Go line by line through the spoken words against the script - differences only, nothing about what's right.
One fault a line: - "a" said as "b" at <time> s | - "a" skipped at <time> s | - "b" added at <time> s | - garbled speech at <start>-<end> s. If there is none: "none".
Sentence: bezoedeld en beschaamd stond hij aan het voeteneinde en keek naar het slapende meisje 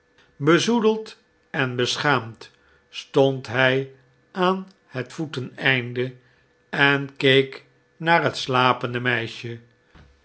none